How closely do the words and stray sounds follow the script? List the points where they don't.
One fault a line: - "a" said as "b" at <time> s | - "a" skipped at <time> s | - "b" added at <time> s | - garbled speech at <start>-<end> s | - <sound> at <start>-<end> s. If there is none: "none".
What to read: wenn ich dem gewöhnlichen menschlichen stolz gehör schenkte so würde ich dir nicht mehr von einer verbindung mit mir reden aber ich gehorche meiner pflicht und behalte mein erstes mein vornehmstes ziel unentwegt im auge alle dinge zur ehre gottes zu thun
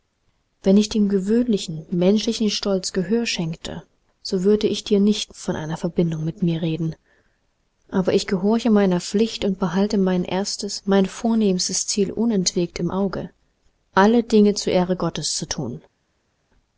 - "mehr" skipped at 5.3 s